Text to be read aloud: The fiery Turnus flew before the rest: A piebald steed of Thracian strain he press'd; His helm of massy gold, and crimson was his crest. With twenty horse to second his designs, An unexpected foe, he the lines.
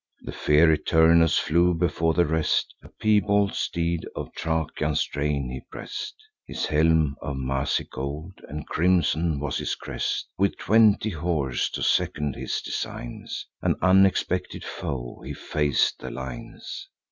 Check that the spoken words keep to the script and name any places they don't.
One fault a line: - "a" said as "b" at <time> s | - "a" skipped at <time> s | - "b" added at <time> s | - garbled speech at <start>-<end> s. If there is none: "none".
- "fac'd" added at 15.3 s